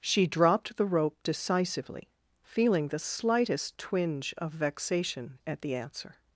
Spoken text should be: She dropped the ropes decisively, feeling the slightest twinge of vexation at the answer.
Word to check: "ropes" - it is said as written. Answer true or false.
false